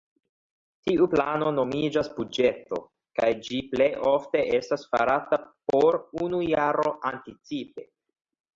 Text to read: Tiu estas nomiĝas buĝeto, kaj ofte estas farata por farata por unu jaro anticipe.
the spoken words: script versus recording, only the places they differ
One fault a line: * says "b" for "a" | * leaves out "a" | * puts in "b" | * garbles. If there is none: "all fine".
* says "plano" for "estas"
* puts in "ĝi plej"
* leaves out "farata por"